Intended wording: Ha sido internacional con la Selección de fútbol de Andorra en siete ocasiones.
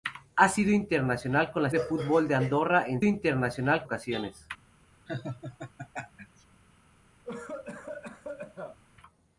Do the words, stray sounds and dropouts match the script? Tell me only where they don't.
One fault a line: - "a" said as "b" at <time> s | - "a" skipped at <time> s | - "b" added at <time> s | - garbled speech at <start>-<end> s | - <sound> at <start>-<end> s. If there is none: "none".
- "Selección" skipped at 1.7 s
- "siete" said as "internacional" at 3.0 s
- laugh at 5.1-6.4 s
- cough at 7.2-8.8 s